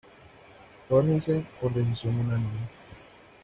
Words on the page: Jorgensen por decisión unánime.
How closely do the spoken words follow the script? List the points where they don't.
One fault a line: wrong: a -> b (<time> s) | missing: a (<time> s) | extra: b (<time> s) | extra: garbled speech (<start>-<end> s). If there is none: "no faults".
no faults